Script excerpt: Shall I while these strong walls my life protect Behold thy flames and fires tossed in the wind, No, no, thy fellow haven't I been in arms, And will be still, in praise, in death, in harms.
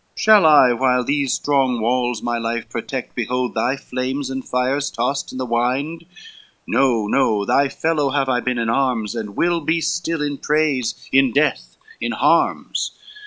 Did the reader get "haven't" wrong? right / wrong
wrong